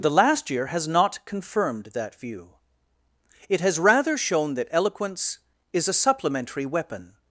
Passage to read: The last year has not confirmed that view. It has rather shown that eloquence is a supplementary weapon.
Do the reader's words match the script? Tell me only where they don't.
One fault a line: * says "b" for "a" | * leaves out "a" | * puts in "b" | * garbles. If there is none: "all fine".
all fine